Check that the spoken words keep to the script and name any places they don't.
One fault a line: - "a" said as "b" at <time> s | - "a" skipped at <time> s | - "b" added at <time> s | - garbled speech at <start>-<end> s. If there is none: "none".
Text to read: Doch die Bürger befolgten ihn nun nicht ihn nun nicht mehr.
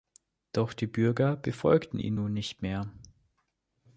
- "ihn nun nicht" skipped at 2.6 s